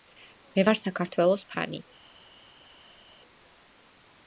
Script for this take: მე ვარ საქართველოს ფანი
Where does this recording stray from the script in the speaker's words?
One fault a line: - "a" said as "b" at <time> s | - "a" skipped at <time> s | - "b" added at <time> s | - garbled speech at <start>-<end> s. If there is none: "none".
none